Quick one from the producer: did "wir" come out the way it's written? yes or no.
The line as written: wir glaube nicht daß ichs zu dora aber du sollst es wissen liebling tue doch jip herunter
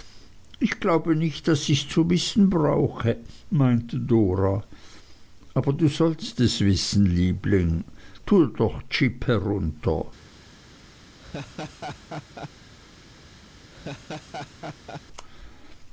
no